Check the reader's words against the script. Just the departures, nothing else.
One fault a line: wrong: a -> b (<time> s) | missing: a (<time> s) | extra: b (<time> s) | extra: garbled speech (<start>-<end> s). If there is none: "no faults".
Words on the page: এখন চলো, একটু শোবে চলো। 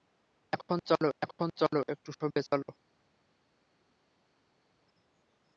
extra: এখন চলো (1.2 s)